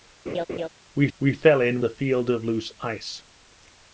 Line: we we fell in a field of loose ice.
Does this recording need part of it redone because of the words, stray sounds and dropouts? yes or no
yes